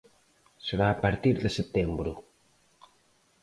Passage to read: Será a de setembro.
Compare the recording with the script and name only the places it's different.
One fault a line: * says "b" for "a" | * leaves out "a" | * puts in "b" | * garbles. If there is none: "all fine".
* puts in "partir"